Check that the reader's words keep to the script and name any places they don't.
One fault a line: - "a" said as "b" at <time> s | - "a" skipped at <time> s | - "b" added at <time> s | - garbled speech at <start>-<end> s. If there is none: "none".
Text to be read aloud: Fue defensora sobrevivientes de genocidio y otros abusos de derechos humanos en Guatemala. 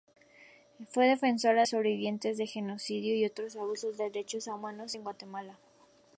none